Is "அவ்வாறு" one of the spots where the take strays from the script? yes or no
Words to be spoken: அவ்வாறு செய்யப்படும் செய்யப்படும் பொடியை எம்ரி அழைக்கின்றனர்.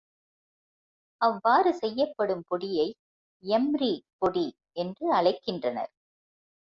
no